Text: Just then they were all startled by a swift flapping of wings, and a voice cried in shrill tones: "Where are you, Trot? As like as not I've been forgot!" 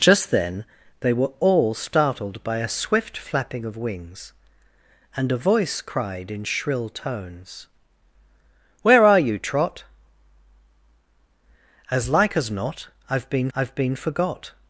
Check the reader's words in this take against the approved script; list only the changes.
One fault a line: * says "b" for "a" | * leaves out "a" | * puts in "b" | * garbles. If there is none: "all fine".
* puts in "I've been"